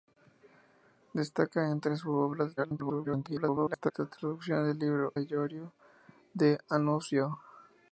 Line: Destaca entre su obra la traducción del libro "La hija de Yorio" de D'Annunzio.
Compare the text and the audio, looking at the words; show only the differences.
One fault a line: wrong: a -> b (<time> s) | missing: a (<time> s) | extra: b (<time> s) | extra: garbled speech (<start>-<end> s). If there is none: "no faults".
extra: garbled speech (2.6-3.9 s)
missing: La hija (5.2 s)